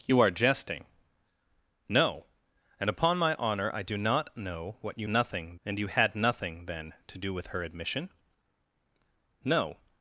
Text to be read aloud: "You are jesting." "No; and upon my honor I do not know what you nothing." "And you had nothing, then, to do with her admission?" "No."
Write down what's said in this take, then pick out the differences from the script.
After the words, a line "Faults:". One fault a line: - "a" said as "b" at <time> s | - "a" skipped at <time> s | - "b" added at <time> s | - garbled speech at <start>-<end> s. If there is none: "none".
"You are jesting." "No; and upon my honor I do not know what you nothing." "And you had nothing, then, to do with her admission?" "No."
Faults:
none